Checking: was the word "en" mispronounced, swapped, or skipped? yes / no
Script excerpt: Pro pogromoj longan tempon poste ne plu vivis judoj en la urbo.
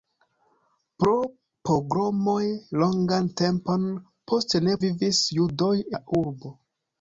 yes